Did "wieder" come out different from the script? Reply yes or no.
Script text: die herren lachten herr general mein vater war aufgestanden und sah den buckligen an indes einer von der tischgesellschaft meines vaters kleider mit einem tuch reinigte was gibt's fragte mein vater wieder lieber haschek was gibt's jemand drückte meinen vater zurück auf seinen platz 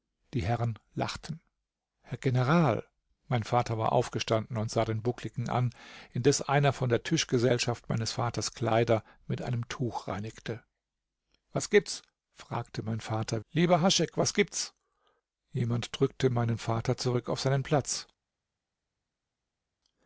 yes